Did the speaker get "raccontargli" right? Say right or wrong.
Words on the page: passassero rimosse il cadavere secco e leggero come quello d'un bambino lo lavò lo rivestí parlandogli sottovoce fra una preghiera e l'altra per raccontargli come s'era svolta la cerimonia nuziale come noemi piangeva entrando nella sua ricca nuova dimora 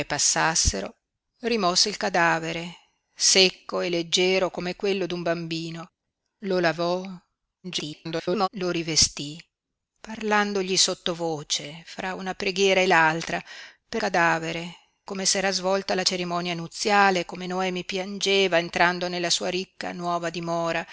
wrong